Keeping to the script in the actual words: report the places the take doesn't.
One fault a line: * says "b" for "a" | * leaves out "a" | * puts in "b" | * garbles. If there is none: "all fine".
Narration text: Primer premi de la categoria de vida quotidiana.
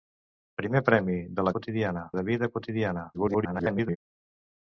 * says "quotidiana" for "categoria"
* garbles